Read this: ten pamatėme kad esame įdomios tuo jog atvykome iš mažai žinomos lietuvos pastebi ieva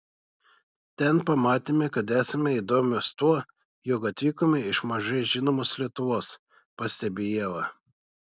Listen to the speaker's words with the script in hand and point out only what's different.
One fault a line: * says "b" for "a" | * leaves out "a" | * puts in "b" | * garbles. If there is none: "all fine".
all fine